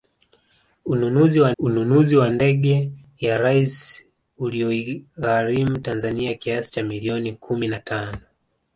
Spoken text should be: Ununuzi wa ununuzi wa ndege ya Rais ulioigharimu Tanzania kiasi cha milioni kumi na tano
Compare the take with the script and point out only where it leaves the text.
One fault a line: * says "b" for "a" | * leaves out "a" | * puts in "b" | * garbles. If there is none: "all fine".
all fine